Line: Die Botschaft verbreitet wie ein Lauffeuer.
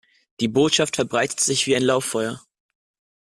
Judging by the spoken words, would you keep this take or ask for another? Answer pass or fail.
fail